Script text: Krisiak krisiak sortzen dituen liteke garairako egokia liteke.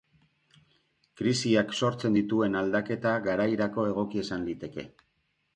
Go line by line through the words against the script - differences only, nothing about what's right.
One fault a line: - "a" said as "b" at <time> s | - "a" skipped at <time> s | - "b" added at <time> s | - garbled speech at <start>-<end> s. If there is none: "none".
- "krisiak" skipped at 1.8 s
- "liteke" said as "aldaketa" at 2.6 s
- "izan" added at 4.3 s